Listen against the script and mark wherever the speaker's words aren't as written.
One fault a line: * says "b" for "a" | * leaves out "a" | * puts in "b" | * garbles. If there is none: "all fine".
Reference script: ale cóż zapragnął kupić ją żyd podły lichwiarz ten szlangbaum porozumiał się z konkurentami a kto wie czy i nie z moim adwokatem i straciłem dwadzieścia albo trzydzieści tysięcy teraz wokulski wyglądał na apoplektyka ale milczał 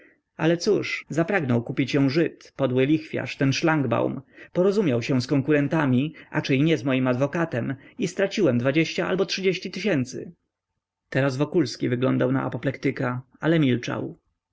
* leaves out "kto wie"